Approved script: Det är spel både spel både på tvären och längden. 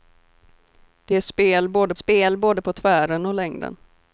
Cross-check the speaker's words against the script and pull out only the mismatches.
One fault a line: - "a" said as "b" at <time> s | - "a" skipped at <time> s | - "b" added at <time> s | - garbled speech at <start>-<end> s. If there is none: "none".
none